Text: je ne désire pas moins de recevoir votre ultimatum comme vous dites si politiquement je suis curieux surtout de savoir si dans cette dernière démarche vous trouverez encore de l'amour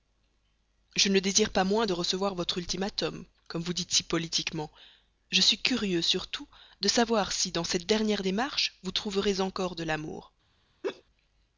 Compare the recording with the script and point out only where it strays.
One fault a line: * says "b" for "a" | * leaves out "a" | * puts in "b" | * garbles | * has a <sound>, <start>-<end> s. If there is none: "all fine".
* has a laugh, 10.8-11.0 s